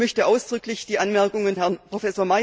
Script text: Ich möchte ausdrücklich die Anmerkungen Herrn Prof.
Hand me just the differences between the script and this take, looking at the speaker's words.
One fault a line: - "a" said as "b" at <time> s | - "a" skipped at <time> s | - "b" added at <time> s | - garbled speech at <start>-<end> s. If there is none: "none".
none